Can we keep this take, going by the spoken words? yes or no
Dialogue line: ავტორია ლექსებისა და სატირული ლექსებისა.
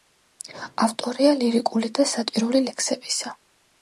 no